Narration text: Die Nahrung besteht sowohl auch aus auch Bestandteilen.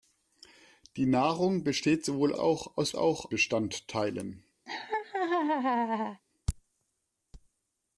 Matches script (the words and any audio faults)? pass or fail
fail